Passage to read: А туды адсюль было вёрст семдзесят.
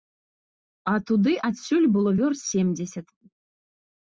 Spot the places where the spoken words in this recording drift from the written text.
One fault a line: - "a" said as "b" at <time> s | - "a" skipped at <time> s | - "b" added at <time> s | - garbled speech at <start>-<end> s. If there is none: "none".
none